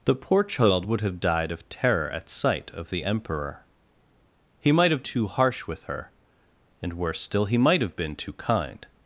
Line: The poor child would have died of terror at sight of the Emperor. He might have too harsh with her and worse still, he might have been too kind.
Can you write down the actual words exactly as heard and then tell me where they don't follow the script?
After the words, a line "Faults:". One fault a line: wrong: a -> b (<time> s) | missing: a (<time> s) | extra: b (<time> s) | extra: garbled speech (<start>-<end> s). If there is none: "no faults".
The poor child would have died of terror at sight of the Emperor. He might have too harsh with her and worse still, he might have been too kind.
Faults:
no faults